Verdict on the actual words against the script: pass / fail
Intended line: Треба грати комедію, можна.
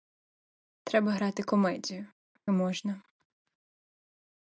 pass